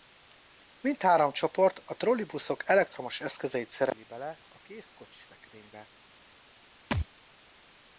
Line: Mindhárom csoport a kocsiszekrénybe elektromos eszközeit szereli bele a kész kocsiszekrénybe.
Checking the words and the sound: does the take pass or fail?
fail